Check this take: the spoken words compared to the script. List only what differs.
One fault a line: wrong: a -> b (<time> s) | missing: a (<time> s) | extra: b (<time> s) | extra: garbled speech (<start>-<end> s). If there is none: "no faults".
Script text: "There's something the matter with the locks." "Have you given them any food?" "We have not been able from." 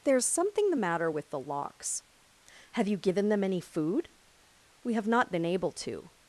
wrong: from -> to (5.7 s)